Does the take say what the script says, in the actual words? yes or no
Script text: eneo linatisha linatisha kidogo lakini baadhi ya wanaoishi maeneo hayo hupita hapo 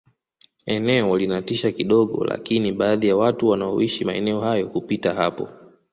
no